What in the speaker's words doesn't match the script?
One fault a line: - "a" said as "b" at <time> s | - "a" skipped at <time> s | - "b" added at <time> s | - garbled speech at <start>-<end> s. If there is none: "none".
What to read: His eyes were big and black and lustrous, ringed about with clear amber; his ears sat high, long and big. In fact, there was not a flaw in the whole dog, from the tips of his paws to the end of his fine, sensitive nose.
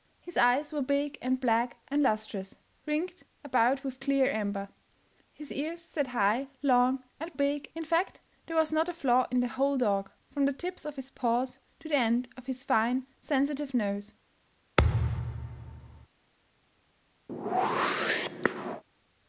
none